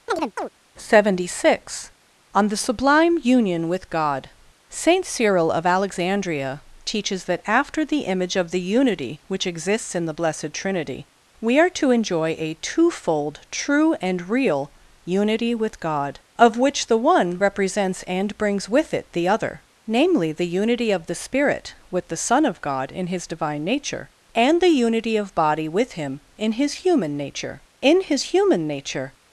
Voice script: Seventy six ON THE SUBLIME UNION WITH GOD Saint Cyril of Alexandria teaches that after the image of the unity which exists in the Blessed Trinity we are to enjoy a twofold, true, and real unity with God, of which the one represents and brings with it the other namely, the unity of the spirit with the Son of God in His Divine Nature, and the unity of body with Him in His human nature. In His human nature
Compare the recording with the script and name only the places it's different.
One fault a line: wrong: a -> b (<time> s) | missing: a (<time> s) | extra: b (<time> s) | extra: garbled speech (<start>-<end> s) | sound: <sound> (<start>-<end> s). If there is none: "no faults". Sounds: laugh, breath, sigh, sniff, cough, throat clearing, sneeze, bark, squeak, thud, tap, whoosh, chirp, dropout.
sound: chirp (0.1-0.5 s)